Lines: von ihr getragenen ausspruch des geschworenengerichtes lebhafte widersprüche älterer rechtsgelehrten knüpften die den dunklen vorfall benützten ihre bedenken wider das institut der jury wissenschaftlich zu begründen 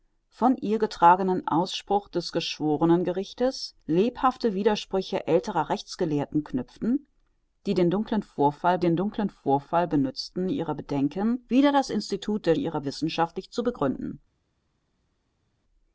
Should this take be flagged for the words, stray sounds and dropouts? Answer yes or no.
yes